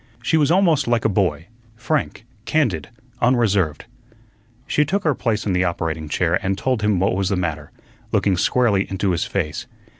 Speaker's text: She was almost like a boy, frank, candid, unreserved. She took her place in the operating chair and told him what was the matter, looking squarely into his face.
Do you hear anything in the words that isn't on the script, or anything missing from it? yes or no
no